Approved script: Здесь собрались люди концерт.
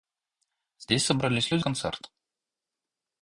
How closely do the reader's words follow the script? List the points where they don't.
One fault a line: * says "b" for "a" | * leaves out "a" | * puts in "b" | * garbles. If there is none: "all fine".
all fine